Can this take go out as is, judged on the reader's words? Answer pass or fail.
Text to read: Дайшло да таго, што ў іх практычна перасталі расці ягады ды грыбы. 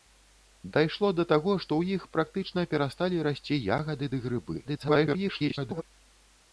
fail